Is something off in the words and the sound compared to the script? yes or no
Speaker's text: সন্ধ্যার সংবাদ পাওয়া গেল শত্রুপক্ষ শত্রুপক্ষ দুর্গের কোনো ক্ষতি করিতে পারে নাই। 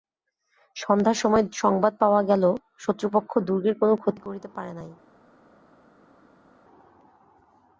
yes